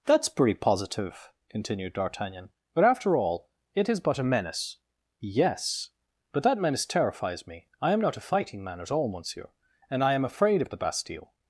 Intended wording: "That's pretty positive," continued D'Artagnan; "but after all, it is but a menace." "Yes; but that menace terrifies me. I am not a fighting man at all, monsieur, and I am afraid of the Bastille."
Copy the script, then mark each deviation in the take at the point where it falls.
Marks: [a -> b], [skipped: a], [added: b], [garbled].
"That's pretty positive," continued D'Artagnan; "but after all, it is but a menace." "Yes; but that menace terrifies me. I am not a fighting man at all, monsieur, and I am afraid of the Bastille."